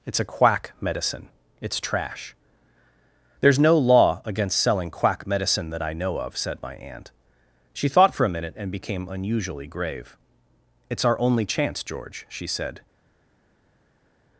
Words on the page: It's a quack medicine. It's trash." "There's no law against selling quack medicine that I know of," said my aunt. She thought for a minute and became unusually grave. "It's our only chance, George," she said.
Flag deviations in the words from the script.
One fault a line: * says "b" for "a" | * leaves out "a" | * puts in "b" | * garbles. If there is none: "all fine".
all fine